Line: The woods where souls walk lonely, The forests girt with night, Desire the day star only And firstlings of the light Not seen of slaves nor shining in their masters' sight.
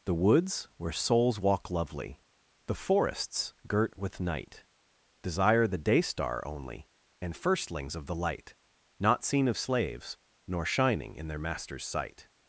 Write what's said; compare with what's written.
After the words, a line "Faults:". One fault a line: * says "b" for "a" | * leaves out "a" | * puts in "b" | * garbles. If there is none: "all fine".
The woods where souls walk lovely, The forests girt with night, Desire the day star only And firstlings of the light Not seen of slaves nor shining in their masters' sight.
Faults:
* says "lovely" for "lonely"